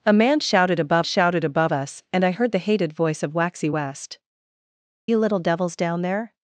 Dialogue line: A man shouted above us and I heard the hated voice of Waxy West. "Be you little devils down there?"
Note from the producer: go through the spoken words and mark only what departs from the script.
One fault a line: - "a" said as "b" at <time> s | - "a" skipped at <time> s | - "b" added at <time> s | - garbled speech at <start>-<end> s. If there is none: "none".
- "shouted above" added at 1.0 s
- "Be" skipped at 4.2 s